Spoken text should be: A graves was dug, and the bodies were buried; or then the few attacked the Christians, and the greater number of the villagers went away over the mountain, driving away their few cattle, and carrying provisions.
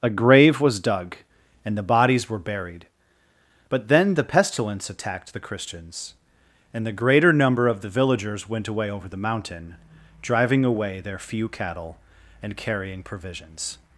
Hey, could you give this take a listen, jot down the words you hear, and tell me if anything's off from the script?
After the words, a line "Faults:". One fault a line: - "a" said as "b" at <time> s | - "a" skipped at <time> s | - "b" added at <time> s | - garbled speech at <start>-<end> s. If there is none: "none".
A grave was dug, and the bodies were buried; but then the pestilence attacked the Christians, and the greater number of the villagers went away over the mountain, driving away their few cattle, and carrying provisions.
Faults:
- "graves" said as "grave" at 0.1 s
- "or" said as "but" at 3.7 s
- "few" said as "pestilence" at 4.2 s